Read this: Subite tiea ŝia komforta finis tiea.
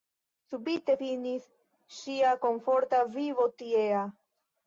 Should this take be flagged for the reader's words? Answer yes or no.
yes